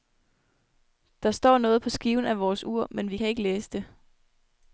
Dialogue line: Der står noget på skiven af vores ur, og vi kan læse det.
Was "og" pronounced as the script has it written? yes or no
no